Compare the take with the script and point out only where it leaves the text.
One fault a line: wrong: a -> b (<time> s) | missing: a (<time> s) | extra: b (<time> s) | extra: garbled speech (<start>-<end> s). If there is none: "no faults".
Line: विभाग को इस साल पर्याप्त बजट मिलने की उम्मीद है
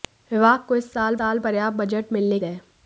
extra: साल (1.2 s)
missing: की उम्मीद (2.4 s)